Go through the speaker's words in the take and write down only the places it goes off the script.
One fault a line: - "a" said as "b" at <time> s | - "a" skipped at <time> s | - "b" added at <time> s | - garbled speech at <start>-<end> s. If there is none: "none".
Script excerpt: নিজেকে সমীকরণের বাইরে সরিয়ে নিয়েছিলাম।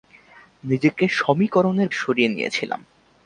- "বাইরে" skipped at 1.9 s